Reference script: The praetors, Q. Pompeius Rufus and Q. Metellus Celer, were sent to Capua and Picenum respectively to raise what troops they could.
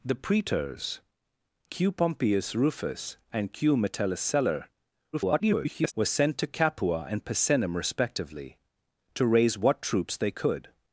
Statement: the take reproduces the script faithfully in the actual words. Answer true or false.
false